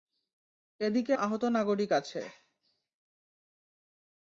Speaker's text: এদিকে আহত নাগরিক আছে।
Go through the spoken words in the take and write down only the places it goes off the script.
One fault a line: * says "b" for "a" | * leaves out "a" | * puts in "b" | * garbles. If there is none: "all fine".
all fine